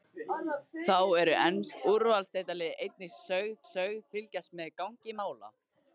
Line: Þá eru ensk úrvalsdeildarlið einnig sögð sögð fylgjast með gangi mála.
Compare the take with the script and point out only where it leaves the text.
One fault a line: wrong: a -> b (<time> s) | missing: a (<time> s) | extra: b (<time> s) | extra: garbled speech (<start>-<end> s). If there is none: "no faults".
no faults